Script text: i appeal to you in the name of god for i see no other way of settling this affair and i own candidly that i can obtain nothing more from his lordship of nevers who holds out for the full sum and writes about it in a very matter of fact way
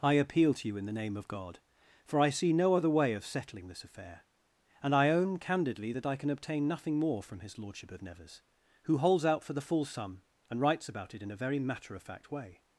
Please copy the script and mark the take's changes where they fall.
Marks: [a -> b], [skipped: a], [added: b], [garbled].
i appeal to you in the name of god for i see no other way of settling this affair and i own candidly that i can obtain nothing more from his lordship of nevers who holds out for the full sum and writes about it in a very matter of fact way